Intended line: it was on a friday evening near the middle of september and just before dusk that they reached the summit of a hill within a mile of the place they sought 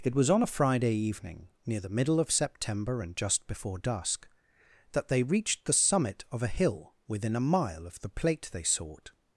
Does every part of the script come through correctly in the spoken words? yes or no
no